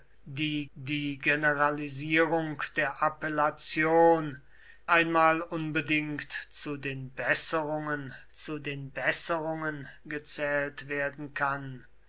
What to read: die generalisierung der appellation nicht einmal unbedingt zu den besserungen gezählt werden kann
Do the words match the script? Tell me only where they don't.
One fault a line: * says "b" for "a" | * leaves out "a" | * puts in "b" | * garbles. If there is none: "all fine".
* puts in "die"
* leaves out "nicht"
* puts in "zu den besserungen"